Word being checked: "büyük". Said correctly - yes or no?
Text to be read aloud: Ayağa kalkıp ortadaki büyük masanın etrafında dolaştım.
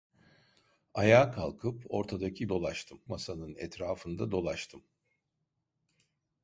no